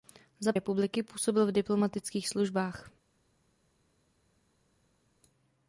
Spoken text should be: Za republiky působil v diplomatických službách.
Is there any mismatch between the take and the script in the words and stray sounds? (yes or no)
no